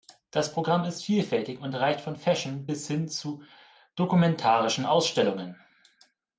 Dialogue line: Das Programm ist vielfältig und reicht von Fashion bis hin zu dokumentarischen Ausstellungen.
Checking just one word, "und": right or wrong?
right